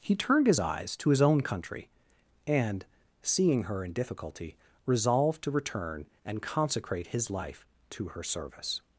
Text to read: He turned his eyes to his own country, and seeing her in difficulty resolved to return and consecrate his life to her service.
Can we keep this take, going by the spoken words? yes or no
yes